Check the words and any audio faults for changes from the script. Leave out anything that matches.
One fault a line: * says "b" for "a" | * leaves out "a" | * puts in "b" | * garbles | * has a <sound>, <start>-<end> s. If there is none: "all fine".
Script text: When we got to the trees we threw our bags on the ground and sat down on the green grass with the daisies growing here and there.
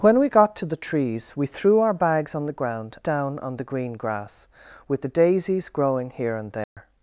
* leaves out "and sat"
* has a dropout, 6.6-6.8 s